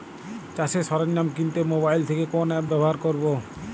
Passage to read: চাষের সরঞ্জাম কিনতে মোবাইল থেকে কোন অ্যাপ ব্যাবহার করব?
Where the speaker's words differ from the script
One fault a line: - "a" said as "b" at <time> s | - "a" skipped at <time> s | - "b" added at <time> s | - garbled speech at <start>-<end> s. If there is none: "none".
none